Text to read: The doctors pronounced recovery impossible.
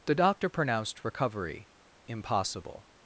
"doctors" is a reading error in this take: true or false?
true